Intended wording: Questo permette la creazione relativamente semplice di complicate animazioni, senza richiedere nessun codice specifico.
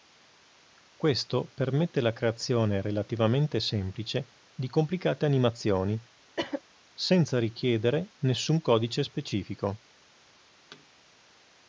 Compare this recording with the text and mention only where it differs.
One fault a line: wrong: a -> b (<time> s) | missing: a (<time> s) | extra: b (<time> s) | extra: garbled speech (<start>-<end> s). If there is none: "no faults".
no faults